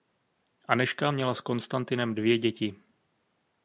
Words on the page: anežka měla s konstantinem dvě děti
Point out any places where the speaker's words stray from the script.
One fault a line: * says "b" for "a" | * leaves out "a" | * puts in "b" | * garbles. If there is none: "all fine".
all fine